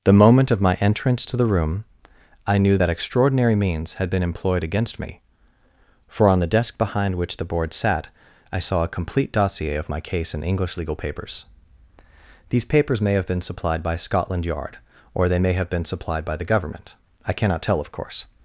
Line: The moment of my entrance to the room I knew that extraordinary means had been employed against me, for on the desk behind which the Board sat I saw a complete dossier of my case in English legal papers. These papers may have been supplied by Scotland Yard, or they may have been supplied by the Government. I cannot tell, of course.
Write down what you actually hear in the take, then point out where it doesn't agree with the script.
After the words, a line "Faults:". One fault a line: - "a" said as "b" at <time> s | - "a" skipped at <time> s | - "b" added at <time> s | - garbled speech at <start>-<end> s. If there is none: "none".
The moment of my entrance to the room I knew that extraordinary means had been employed against me, for on the desk behind which the Board sat I saw a complete dossier of my case in English legal papers. These papers may have been supplied by Scotland Yard, or they may have been supplied by the Government. I cannot tell, of course.
Faults:
none